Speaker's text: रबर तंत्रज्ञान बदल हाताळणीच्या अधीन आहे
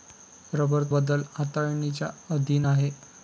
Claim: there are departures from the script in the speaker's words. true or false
true